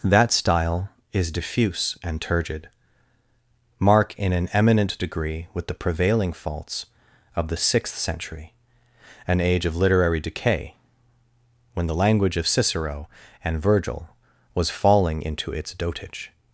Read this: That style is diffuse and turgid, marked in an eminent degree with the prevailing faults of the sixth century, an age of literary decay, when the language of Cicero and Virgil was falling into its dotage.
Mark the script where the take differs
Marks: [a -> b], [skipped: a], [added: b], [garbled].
That style is diffuse and turgid, [marked -> mark] in an eminent degree with the prevailing faults of the sixth century, an age of literary decay, when the language of Cicero and Virgil was falling into its dotage.